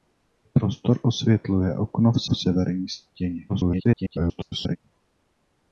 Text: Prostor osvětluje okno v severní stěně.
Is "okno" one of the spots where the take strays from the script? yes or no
no